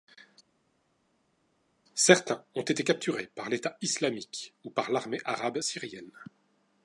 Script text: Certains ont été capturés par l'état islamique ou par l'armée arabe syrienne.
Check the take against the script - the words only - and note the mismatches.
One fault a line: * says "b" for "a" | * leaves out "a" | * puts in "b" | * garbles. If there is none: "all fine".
all fine